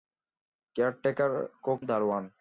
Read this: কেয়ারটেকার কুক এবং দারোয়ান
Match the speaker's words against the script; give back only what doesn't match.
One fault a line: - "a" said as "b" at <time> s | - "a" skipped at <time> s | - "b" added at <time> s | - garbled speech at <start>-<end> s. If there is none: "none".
- "এবং" skipped at 1.8 s